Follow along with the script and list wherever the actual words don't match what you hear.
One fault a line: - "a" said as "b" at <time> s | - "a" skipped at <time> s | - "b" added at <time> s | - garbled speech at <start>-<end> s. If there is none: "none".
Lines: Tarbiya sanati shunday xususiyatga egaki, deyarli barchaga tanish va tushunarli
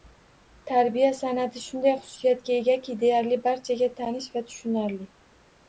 none